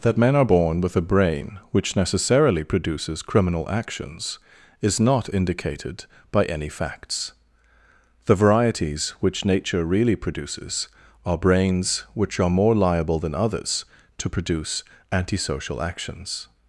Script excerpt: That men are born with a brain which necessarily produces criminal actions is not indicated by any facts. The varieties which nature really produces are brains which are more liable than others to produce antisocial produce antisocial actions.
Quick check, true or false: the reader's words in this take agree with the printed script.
false